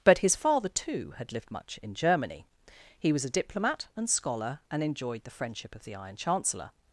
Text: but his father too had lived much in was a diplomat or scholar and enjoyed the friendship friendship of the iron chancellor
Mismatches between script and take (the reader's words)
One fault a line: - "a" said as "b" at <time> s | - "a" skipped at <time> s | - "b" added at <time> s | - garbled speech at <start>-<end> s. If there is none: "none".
- "germany he" added at 1.9 s
- "or" said as "and" at 4.0 s
- "friendship" skipped at 5.7 s